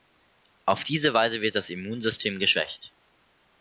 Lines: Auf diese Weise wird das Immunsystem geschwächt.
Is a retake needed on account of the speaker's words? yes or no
no